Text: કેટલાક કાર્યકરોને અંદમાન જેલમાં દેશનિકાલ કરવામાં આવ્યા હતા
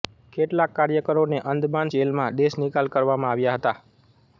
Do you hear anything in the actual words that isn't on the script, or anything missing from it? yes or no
no